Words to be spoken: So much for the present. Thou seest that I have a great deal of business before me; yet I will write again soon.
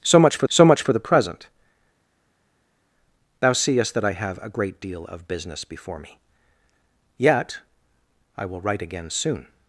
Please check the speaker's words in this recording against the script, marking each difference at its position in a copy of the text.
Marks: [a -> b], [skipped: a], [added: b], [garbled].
So much for [added: so much for] the present. Thou seest that I have a great deal of business before me; yet I will write again soon.